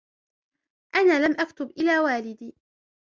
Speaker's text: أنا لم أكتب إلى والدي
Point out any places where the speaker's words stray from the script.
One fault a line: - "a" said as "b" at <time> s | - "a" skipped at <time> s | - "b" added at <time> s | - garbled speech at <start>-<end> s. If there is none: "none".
none